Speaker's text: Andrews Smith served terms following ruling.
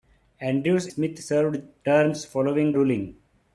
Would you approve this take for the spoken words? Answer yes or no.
yes